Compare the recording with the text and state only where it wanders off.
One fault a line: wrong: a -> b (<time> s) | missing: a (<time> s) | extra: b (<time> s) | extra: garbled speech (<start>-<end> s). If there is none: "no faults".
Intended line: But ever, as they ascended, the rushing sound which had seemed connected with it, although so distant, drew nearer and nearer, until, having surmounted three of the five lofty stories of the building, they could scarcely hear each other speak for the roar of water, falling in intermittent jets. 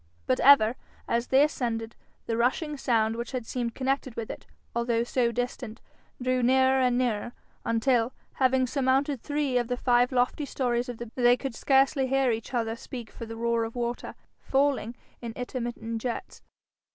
missing: building (11.1 s)